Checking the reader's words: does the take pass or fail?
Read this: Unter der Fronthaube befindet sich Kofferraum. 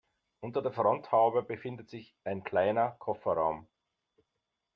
fail